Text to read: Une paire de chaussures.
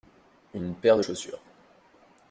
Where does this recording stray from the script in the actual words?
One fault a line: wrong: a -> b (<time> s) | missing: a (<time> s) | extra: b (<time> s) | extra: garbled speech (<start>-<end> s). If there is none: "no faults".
no faults